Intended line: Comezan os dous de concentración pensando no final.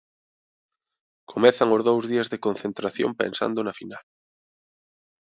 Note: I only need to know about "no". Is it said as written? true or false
false